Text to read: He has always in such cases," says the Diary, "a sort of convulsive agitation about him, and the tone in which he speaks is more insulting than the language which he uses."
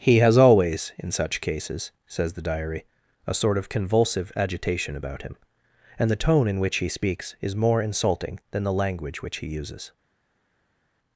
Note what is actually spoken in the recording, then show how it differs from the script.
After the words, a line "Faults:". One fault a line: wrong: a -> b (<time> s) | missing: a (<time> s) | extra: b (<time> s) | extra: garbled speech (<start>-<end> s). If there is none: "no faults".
He has always in such cases," says the Diary, "a sort of convulsive agitation about him, and the tone in which he speaks is more insulting than the language which he uses."
Faults:
no faults